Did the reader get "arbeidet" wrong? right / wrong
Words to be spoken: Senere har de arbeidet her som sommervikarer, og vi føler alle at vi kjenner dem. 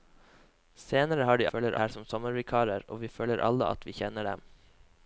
wrong